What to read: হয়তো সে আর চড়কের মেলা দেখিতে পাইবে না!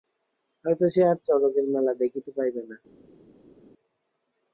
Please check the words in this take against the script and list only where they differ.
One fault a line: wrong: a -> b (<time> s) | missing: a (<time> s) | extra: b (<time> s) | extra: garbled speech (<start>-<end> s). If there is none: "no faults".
no faults